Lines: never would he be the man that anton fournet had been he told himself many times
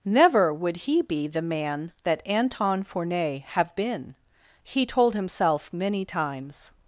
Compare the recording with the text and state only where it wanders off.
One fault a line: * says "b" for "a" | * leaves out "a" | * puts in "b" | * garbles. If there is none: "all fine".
* says "have" for "had"